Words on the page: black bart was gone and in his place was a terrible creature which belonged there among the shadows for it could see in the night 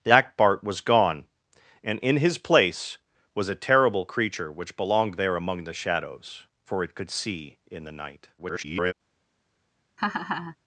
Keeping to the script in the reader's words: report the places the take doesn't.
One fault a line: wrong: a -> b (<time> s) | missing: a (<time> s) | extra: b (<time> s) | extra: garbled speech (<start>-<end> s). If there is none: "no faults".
extra: garbled speech (8.4-8.9 s)